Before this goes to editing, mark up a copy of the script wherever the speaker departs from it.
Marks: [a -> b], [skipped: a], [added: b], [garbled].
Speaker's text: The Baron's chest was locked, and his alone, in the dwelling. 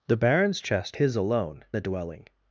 The Baron's chest [skipped: was locked, and] his alone, [skipped: in] the dwelling.